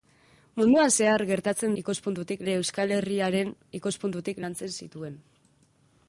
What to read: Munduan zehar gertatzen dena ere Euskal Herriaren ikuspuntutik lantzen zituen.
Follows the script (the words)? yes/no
no